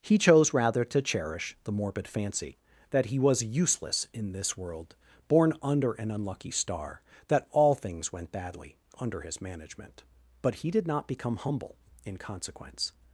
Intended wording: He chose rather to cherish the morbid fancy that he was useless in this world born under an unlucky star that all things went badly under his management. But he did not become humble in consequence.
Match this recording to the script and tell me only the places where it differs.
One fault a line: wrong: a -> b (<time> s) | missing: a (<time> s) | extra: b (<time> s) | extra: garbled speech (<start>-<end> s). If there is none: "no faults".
no faults